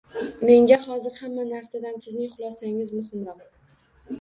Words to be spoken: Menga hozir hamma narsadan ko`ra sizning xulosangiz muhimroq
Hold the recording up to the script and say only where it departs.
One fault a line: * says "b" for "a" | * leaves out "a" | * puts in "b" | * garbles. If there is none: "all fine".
* leaves out "ko`ra"